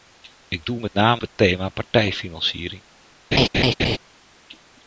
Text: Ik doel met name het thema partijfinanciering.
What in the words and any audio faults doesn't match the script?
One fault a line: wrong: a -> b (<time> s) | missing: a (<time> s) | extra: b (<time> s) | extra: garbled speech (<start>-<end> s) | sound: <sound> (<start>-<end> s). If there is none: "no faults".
sound: laugh (3.3-4.0 s)